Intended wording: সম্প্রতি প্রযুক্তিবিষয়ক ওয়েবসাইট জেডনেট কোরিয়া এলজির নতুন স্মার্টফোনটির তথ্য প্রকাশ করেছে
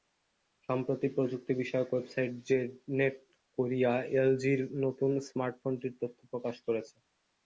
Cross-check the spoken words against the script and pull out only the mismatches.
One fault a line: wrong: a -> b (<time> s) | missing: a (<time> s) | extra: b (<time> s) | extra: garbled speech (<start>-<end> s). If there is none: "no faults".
no faults